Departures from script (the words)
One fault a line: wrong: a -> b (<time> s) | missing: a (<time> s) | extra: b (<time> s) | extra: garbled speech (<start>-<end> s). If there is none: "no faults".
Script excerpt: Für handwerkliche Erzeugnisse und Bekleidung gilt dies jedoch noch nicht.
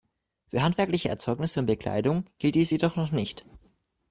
no faults